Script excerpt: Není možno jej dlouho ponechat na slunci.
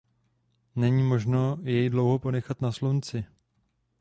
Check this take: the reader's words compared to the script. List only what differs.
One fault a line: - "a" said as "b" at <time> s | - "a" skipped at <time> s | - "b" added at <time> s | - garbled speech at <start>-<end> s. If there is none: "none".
none